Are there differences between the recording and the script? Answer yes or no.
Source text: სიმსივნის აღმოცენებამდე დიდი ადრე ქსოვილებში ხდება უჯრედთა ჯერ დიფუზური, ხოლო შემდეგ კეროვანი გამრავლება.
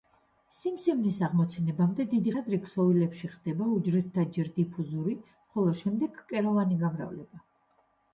no